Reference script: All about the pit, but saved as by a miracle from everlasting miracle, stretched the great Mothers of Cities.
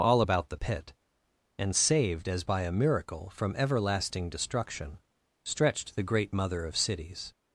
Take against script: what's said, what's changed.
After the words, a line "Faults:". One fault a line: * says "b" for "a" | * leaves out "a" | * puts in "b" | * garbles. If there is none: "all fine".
All about the pit, and saved as by a miracle from everlasting destruction, stretched the great Mother of Cities.
Faults:
* says "and" for "but"
* says "destruction" for "miracle"
* says "Mother" for "Mothers"